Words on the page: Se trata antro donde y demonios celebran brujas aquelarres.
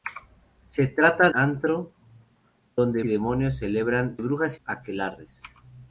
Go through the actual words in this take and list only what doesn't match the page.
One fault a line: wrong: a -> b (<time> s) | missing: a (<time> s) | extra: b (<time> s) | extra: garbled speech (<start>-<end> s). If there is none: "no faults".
no faults